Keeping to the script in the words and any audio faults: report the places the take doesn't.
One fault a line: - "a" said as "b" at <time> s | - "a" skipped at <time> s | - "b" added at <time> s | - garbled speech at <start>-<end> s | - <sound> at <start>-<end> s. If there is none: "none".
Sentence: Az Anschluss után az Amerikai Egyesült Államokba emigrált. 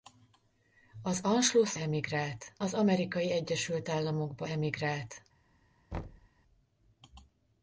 - "után" said as "emigrált" at 1.7 s
- thud at 5.9-6.3 s